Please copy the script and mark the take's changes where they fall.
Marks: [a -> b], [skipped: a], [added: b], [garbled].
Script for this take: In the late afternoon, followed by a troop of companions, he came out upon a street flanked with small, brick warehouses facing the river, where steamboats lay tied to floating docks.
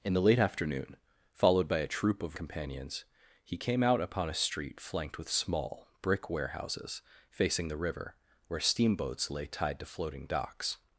In the late afternoon, followed by a troop of companions, he came out upon a street flanked with small, brick warehouses facing the river, where steamboats lay tied to floating docks.